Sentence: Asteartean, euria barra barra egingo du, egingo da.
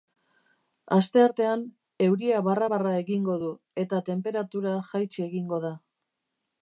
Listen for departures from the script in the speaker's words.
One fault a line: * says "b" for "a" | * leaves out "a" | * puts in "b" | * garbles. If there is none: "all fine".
* puts in "eta tenperatura jaitsi"